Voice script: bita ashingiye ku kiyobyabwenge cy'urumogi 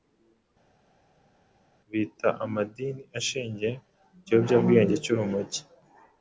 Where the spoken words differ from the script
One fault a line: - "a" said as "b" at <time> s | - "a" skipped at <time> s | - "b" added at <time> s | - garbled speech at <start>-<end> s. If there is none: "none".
- "amadini" added at 2.4 s